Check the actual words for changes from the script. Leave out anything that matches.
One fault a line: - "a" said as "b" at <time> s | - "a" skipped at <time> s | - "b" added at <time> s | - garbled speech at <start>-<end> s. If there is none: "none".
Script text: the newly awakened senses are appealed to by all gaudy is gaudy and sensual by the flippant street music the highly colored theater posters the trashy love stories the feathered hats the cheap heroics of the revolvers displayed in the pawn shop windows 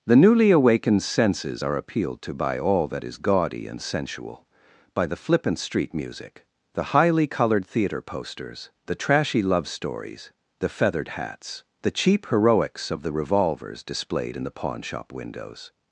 - "gaudy" said as "that" at 2.9 s